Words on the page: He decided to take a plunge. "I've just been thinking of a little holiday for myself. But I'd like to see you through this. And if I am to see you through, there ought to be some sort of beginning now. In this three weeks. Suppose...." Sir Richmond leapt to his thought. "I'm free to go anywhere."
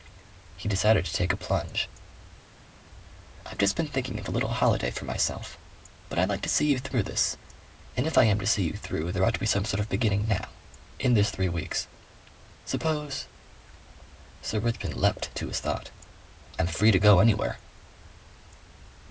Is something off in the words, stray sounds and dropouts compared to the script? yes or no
no